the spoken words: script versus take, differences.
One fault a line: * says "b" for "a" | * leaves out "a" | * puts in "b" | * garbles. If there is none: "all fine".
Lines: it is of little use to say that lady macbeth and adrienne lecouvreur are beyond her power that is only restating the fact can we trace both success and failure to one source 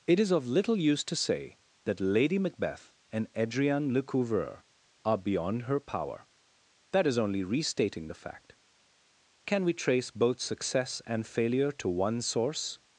all fine